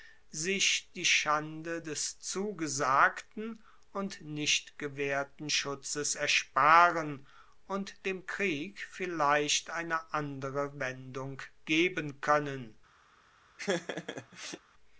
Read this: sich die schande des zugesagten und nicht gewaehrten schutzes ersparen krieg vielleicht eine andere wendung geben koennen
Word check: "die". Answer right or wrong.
right